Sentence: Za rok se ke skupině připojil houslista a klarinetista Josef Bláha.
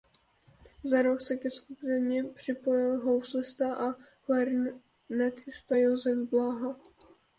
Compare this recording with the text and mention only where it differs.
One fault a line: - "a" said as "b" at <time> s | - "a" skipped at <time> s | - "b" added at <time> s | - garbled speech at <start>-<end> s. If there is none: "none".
none